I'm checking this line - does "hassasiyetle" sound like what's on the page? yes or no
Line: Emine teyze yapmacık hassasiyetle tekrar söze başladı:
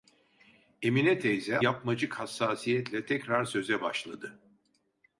yes